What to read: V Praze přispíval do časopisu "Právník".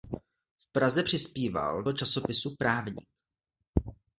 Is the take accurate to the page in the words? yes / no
yes